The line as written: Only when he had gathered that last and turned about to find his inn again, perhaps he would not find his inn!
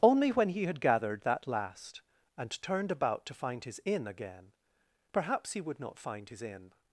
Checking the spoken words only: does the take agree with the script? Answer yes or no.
yes